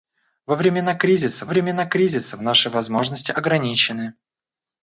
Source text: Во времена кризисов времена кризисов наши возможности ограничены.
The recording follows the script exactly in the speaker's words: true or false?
true